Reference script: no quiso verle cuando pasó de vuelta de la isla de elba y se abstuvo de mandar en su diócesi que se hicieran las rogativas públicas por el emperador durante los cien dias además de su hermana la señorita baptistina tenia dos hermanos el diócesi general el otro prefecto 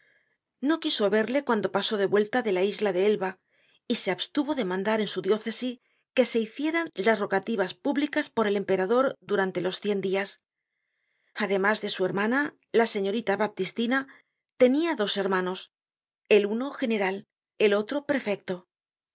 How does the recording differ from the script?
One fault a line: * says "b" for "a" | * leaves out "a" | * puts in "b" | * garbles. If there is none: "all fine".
* says "uno" for "diócesi"